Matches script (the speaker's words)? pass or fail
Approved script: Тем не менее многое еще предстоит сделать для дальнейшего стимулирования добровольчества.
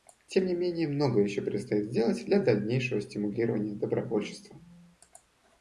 pass